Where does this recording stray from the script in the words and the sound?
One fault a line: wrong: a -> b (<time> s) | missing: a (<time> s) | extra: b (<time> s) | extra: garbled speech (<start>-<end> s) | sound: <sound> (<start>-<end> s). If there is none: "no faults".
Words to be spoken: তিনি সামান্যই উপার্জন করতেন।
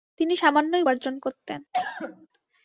sound: cough (1.7-2.3 s)